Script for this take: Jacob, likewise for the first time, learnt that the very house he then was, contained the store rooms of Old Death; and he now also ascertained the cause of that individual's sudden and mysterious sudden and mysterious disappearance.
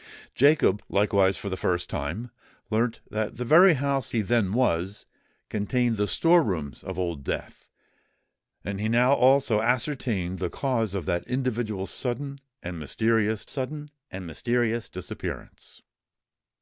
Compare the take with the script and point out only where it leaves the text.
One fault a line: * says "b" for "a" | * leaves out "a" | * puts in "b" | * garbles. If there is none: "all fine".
all fine